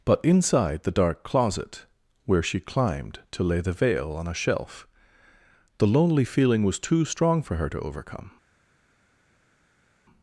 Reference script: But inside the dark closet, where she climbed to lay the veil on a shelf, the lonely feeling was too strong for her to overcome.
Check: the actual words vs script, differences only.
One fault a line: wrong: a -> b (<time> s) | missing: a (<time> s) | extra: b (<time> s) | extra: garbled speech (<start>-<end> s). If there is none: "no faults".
no faults